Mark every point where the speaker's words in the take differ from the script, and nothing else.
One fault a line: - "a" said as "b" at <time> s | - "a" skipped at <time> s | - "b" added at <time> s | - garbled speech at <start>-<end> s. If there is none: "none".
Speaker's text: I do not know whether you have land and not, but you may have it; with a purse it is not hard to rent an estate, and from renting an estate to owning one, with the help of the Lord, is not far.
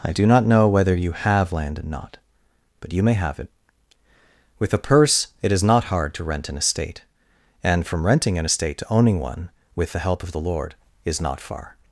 none